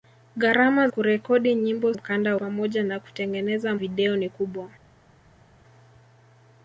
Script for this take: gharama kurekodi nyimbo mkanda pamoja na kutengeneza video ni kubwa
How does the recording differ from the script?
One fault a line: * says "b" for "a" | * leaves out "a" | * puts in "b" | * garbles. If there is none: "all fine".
all fine